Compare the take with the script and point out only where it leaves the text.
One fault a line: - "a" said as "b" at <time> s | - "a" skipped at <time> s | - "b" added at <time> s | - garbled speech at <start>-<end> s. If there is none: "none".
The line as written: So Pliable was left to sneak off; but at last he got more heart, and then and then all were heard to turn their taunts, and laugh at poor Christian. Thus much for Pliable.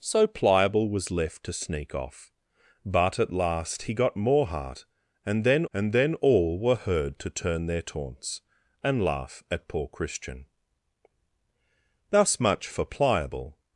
none